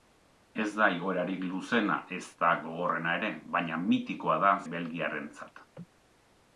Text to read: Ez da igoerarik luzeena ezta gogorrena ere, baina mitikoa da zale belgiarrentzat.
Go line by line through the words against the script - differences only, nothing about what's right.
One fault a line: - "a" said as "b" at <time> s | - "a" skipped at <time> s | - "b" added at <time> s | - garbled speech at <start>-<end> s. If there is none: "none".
- "zale" skipped at 4.5 s